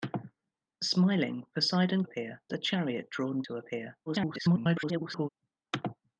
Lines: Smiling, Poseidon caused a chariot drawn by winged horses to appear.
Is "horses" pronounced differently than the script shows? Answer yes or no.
yes